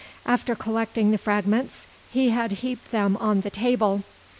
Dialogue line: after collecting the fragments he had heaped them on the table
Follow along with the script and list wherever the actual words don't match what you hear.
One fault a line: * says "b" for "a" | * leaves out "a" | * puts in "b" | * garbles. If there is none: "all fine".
all fine